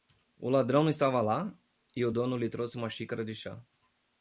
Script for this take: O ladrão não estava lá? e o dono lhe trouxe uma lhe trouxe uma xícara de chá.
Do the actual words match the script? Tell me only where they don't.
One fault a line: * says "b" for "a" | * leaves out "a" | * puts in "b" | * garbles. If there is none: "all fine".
* leaves out "lhe trouxe uma"